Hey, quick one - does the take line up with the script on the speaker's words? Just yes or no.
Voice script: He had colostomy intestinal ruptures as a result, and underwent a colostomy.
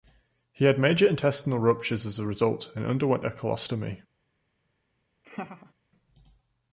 no